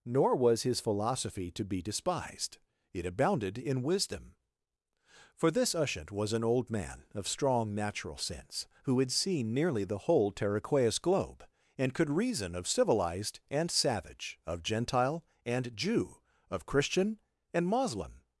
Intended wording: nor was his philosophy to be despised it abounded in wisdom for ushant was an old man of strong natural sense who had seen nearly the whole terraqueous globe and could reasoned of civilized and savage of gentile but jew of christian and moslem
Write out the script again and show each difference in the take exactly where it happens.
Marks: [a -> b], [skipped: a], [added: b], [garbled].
nor was his philosophy to be despised it abounded in wisdom for [added: this] ushant was an old man of strong natural sense who had seen nearly the whole terraqueous globe and could [reasoned -> reason] of civilized and savage of gentile [but -> and] jew of christian and moslem